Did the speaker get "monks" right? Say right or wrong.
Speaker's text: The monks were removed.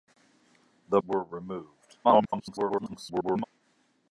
wrong